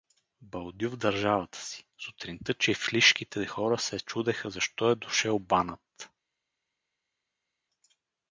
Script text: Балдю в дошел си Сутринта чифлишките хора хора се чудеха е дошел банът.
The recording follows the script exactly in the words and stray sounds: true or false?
false